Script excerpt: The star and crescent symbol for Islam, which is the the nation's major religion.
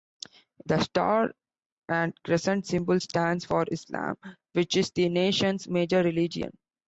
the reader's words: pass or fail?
fail